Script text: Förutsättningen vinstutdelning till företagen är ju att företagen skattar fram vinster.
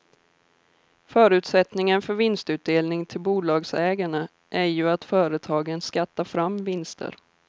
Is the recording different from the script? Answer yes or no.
yes